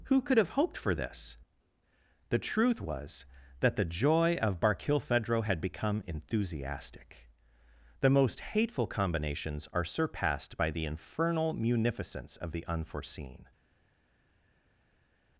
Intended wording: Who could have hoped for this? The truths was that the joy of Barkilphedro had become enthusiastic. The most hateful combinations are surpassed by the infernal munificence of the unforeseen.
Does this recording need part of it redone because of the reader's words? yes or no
yes